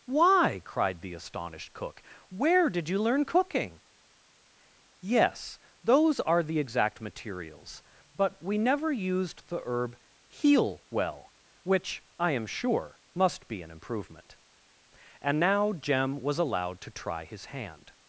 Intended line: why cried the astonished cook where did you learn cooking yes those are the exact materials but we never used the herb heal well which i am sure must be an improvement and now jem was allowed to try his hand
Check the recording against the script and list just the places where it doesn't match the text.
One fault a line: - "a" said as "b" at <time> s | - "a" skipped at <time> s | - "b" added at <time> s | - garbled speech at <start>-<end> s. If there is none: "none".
none